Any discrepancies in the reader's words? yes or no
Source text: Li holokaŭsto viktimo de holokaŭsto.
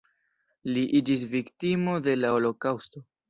yes